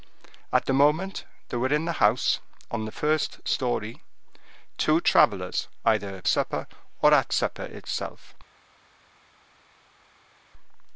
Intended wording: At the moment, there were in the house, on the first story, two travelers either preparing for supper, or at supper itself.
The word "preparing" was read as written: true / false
false